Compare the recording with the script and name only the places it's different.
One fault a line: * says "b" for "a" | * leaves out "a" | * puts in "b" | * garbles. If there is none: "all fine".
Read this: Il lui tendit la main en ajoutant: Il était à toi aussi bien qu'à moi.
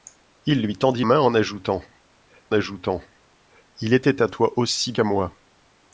* leaves out "la"
* puts in "ajoutant"
* leaves out "bien"